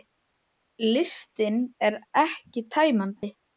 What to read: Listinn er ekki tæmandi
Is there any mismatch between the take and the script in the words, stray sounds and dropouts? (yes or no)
yes